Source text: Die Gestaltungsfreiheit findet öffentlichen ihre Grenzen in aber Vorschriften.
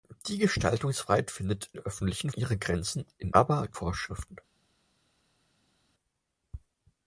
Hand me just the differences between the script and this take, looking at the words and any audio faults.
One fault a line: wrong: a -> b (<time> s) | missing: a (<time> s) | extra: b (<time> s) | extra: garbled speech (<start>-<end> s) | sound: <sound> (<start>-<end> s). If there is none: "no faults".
no faults